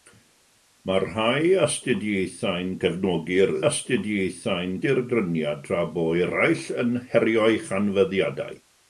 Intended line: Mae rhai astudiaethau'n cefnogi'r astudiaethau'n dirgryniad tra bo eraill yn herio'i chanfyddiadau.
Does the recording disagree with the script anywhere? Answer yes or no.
no